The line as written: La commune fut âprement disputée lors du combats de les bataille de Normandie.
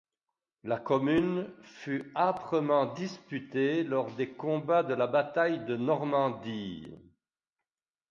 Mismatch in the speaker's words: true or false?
true